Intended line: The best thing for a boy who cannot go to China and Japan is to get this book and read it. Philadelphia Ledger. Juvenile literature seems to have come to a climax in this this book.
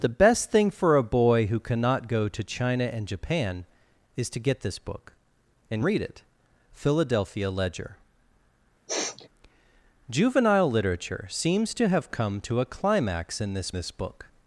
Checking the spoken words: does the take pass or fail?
pass